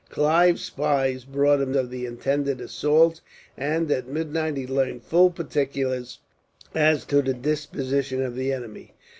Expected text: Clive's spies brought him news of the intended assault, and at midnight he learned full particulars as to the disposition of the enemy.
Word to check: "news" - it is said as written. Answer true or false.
false